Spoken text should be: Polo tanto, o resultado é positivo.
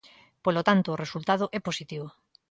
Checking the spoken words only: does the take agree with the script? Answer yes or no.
yes